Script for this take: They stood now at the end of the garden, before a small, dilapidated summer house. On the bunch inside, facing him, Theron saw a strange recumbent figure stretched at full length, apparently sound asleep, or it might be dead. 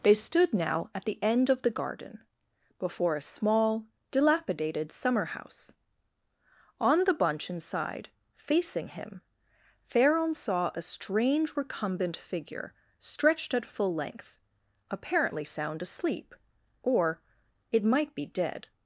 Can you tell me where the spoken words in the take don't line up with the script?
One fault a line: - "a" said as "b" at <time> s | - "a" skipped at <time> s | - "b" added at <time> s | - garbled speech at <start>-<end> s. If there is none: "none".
none